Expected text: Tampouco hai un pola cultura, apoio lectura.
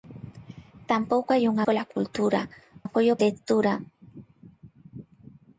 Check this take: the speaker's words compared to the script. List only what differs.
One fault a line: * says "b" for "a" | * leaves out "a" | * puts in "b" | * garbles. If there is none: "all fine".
all fine